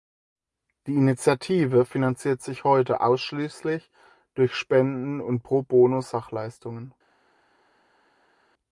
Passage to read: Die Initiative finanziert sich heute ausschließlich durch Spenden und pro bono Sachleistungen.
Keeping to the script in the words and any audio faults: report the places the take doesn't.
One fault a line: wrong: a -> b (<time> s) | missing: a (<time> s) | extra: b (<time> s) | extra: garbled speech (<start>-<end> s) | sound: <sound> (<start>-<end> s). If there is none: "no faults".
no faults